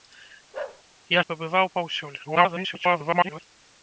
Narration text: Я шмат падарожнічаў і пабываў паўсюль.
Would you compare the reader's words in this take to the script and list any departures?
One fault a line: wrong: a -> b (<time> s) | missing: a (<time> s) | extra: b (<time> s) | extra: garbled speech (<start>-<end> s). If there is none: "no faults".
missing: шмат падарожнічаў (1.2 s)
extra: garbled speech (2.2-3.4 s)